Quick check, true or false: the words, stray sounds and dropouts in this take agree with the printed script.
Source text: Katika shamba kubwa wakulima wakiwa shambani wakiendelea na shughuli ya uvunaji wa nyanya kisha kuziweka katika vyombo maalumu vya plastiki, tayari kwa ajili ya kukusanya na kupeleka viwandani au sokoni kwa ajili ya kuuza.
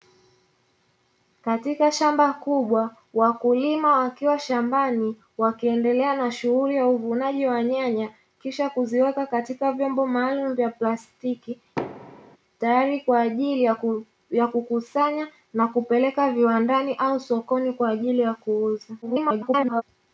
false